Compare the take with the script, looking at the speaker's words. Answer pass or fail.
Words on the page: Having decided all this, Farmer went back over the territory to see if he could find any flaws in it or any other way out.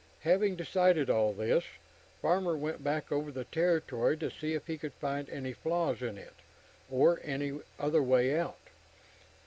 pass